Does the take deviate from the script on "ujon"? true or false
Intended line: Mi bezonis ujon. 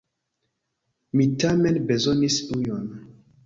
false